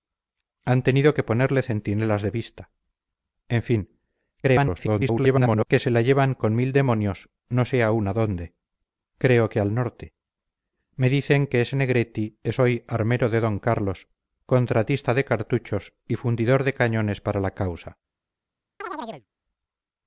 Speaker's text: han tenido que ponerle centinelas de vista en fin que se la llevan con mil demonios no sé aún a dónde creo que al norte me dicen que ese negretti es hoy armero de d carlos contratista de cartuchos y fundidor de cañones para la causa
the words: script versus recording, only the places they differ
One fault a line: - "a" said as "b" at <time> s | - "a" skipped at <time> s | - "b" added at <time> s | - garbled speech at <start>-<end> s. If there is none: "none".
- garbled speech at 4.4-5.7 s